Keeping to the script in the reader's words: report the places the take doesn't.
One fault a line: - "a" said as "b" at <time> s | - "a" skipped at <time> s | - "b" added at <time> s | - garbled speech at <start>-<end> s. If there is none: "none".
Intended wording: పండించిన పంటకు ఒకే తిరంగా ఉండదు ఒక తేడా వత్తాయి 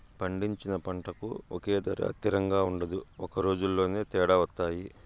- "ధర" added at 1.8 s
- "రోజులోనే" added at 3.4 s